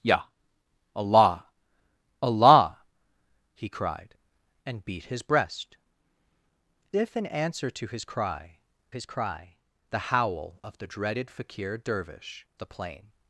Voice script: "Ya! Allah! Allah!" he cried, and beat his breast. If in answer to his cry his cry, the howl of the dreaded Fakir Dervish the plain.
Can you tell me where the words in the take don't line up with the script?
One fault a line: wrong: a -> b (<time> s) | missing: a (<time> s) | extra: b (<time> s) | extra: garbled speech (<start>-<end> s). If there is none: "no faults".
no faults